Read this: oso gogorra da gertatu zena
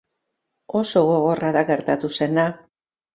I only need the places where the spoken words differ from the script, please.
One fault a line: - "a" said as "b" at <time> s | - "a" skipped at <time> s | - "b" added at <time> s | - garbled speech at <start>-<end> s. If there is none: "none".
none